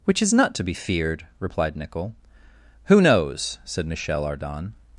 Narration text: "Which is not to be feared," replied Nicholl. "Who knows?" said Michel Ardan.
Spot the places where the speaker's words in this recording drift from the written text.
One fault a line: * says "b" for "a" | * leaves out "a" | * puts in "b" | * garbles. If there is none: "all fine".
all fine